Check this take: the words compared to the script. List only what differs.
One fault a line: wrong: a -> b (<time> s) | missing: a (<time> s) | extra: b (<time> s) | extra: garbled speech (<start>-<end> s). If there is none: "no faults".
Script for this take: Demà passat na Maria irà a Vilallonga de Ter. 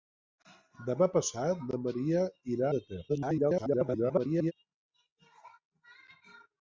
missing: a Vilallonga (2.7 s)
extra: garbled speech (3.1-4.5 s)